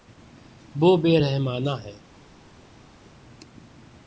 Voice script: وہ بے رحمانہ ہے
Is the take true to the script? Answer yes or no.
yes